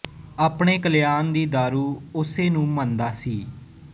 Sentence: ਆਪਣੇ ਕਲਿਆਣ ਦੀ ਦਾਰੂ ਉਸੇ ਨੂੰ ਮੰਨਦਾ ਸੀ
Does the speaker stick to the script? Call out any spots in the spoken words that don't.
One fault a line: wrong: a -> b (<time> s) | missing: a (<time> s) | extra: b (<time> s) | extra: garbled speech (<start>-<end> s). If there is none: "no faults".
no faults